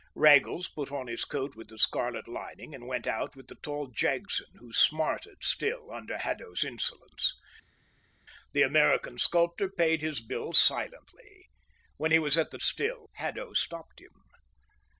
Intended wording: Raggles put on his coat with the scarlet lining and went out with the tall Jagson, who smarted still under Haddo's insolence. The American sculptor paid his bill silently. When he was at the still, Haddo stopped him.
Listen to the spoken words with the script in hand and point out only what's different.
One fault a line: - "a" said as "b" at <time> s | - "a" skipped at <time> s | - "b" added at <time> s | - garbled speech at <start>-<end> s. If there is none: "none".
none